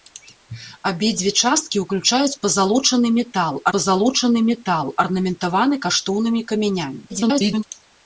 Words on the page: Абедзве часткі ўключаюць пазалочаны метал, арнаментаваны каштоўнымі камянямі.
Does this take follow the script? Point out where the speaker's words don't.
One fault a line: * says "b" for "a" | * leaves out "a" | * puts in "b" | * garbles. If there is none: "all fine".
* puts in "пазалочаны метал"
* garbles